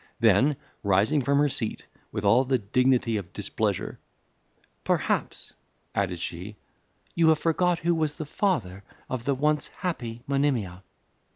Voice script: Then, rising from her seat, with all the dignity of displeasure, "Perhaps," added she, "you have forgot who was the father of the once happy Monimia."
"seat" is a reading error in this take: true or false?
false